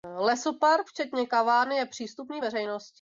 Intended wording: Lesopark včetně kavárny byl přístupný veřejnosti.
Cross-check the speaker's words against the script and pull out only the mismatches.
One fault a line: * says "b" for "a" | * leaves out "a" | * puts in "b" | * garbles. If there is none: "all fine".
* says "je" for "byl"